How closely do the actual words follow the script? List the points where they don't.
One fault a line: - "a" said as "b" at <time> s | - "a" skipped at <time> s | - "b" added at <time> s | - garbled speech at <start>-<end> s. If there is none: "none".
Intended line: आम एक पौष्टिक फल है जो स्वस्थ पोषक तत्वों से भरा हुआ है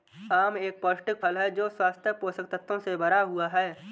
none